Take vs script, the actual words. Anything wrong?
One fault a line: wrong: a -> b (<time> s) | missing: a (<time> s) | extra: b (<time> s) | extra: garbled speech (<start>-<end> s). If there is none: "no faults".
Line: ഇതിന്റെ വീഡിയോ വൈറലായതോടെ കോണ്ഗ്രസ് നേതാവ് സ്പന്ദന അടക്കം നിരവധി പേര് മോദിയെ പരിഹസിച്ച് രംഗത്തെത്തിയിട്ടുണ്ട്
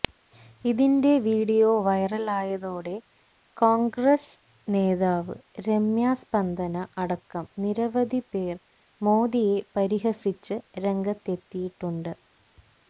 extra: രമ്യ (5.7 s)